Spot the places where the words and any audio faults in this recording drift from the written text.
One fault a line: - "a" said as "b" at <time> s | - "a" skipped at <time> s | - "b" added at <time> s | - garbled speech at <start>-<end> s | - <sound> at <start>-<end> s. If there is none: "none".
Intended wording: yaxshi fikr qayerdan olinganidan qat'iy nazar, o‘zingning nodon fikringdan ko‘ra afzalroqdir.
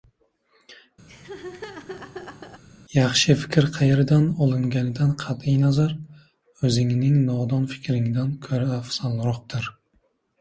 - laugh at 1.1-2.6 s